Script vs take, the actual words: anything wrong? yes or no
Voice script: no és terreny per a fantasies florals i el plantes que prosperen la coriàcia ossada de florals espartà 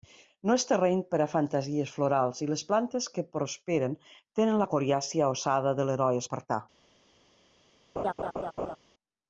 yes